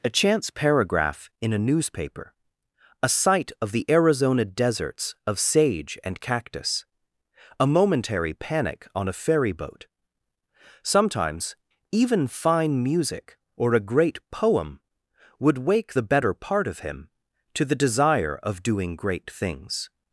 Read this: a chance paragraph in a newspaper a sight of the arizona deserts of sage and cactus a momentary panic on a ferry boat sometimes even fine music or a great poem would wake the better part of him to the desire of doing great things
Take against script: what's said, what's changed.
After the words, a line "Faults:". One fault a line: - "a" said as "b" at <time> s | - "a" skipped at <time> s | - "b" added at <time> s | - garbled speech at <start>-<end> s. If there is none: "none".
a chance paragraph in a newspaper a sight of the arizona deserts of sage and cactus a momentary panic on a ferry boat sometimes even fine music or a great poem would wake the better part of him to the desire of doing great things
Faults:
none